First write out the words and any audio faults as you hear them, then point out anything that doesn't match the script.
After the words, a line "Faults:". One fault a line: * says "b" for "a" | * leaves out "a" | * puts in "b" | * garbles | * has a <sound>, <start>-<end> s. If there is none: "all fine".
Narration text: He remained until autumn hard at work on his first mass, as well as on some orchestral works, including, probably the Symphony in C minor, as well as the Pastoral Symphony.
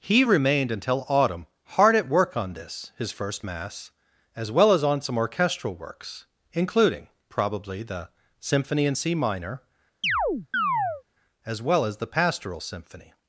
He remained until autumn hard at work on this, his first mass, as well as on some orchestral works, including, probably the Symphony in C minor, as well as the Pastoral Symphony.
Faults:
* puts in "this"
* has a chirp, 10.0-11.0 s